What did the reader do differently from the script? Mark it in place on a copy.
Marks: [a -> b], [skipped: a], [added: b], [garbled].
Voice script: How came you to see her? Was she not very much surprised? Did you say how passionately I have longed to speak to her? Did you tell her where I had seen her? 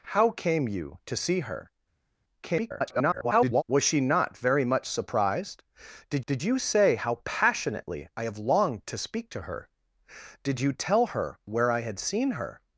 How came you to see her? [garbled] Was she not very much surprised? Did [added: did] you say how passionately I have longed to speak to her? Did you tell her where I had seen her?